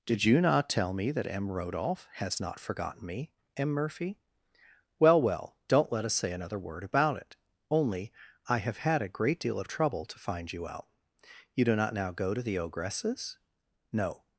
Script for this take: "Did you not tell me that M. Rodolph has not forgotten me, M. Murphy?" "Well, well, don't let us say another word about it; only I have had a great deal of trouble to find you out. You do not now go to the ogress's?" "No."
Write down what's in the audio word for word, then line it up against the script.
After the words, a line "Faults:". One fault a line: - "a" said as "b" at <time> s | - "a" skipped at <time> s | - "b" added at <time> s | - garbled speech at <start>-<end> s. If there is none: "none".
"Did you not tell me that M. Rodolph has not forgotten me, M. Murphy?" "Well, well, don't let us say another word about it; only I have had a great deal of trouble to find you out. You do not now go to the ogress's?" "No."
Faults:
none